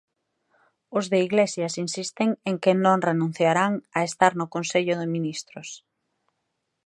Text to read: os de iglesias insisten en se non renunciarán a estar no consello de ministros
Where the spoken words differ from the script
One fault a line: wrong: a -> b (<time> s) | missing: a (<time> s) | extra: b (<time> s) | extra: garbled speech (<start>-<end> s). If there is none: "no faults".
wrong: se -> que (2.6 s)